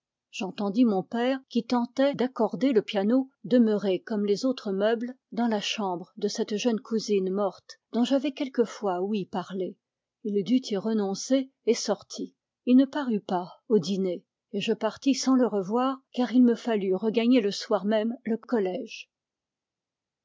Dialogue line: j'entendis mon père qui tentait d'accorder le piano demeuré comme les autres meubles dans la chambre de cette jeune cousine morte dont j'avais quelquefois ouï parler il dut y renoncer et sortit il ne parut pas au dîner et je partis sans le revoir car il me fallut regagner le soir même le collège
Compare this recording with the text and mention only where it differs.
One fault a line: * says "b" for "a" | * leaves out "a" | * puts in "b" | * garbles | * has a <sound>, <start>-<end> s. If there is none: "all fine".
all fine